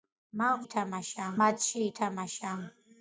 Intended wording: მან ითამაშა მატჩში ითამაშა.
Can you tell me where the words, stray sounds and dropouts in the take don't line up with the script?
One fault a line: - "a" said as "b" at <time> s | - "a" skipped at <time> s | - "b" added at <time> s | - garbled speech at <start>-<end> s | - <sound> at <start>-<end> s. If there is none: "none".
none